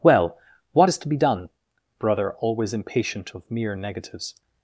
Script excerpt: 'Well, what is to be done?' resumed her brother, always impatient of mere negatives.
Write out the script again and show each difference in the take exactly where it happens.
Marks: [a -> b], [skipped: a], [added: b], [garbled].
'Well, what is to be done?' [skipped: resumed her] brother, always impatient of mere negatives.